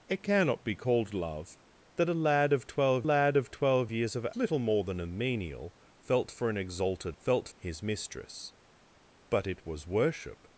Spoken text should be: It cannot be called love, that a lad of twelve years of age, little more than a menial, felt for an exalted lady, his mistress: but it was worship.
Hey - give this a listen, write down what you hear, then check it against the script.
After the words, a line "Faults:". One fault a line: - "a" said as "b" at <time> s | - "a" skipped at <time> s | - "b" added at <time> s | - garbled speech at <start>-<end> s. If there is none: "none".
It cannot be called love, that a lad of twelve lad of twelve years of little more than a menial, felt for an exalted felt, his mistress: but it was worship.
Faults:
- "lad of twelve" added at 3.1 s
- "age" skipped at 4.3 s
- "lady" said as "felt" at 7.2 s